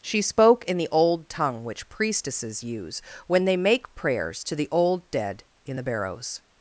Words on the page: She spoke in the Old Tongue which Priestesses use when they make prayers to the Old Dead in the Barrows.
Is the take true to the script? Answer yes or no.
yes